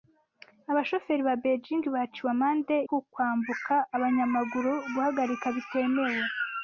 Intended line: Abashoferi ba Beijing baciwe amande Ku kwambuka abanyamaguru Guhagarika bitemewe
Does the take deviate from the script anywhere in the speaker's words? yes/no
no